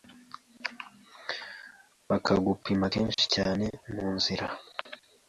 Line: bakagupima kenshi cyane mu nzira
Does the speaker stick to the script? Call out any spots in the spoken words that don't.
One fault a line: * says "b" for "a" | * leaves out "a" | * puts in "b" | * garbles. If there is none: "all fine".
all fine